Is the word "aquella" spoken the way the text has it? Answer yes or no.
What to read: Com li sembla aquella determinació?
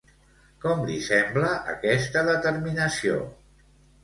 no